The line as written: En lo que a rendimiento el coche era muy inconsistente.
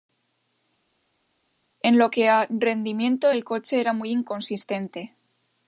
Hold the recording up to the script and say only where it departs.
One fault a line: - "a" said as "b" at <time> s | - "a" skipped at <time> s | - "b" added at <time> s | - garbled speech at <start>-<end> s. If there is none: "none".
none